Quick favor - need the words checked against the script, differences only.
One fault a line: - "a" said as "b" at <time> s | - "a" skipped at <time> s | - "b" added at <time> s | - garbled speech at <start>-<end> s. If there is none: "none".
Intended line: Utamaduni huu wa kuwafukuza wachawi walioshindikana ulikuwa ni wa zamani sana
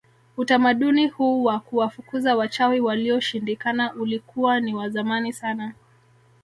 none